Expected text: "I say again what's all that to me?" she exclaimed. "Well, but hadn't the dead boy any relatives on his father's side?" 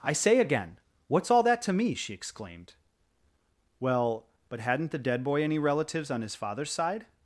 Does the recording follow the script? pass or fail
pass